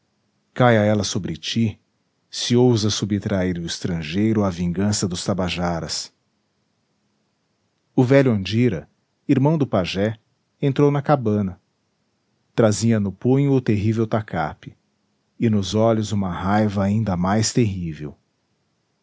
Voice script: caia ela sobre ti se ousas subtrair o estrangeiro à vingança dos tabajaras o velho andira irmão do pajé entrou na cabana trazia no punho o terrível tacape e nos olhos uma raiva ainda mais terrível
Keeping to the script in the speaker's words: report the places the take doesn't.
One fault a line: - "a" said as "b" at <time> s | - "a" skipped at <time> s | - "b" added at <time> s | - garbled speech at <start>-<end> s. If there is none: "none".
none